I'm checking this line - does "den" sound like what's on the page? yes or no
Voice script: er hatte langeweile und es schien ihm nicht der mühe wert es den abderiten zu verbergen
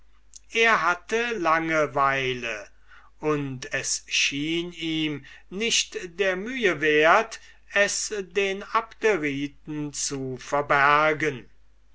yes